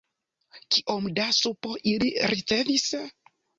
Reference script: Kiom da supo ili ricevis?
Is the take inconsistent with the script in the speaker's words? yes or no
no